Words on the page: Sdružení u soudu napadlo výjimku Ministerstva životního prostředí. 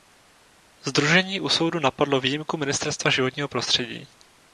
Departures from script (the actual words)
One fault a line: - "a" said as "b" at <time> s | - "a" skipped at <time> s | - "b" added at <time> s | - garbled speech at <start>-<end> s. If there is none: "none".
none